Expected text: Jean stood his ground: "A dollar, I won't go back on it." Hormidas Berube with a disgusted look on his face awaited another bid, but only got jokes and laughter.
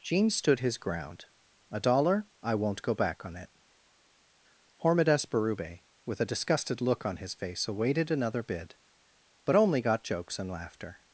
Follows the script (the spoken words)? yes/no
yes